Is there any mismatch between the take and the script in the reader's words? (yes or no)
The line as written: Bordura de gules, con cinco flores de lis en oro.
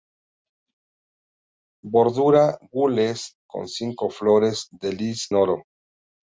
yes